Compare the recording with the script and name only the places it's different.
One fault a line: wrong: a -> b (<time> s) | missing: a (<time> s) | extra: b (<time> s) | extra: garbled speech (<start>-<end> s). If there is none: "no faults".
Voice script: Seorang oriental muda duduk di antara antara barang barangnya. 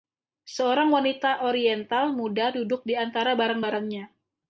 extra: wanita (0.9 s)
missing: antara (3.4 s)